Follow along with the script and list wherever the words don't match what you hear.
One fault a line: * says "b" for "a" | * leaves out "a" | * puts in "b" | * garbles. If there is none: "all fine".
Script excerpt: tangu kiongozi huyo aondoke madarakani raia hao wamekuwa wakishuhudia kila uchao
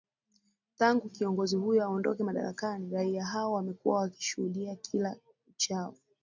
all fine